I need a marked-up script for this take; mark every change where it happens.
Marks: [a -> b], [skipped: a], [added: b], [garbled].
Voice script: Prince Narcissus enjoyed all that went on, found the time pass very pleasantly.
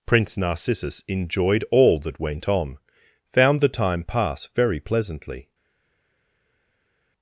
Prince Narcissus enjoyed all that went on, found the time pass very pleasantly.